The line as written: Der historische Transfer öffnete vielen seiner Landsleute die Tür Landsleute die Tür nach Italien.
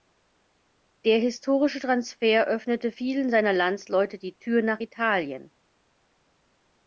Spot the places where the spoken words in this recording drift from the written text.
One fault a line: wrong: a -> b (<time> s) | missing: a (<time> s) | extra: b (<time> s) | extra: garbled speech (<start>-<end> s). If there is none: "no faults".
missing: Landsleute die Tür (4.6 s)